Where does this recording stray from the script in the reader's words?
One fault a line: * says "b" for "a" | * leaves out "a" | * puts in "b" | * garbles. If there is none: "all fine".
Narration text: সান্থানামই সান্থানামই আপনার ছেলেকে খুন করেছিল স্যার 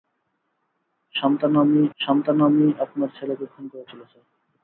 all fine